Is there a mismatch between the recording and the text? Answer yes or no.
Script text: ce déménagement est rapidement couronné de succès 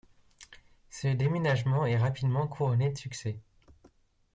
no